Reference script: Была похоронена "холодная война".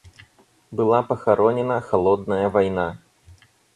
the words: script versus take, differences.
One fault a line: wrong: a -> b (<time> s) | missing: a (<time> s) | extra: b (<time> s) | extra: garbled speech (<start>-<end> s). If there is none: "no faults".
no faults